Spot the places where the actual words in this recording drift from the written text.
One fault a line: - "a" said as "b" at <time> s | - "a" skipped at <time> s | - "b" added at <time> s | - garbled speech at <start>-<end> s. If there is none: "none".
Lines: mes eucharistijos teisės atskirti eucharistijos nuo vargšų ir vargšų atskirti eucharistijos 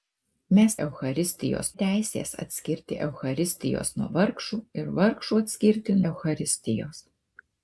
none